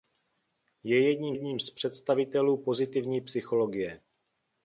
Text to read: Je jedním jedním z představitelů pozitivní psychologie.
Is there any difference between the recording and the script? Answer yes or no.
no